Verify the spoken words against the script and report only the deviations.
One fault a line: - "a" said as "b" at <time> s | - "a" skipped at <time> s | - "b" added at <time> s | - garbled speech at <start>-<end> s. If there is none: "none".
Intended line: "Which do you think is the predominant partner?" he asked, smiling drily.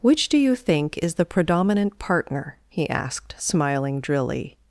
none